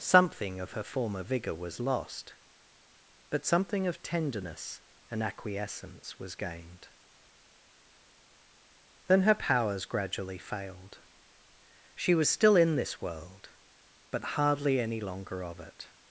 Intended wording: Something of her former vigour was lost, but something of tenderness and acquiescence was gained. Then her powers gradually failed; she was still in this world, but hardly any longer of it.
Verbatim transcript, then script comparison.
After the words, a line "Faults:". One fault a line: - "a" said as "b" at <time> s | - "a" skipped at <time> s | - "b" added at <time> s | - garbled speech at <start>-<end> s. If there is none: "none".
Something of her former vigour was lost, but something of tenderness and acquiescence was gained. Then her powers gradually failed; she was still in this world, but hardly any longer of it.
Faults:
none